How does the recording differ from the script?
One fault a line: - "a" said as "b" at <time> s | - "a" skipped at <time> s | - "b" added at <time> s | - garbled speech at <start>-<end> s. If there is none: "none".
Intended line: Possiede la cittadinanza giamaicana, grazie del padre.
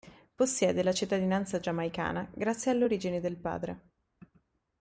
- "alle origini" added at 2.7 s